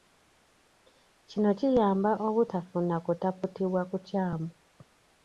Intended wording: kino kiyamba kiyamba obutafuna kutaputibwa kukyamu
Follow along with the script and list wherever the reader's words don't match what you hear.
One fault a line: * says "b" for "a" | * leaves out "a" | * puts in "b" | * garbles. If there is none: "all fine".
* leaves out "kiyamba"